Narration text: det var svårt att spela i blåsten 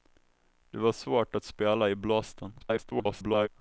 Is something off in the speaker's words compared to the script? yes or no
yes